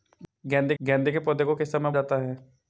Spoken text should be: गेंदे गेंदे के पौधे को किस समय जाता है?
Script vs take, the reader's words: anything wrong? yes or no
no